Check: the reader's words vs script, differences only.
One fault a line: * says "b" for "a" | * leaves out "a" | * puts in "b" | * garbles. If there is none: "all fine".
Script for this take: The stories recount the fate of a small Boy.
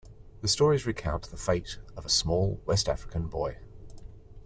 * puts in "West African"